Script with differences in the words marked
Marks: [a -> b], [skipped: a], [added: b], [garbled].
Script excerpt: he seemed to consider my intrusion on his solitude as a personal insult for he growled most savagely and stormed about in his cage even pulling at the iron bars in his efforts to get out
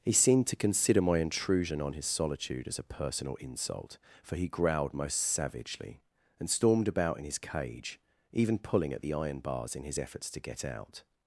he seemed to consider my intrusion on his solitude as a personal insult for he growled most savagely and stormed about in his cage even pulling at the iron bars in his efforts to get out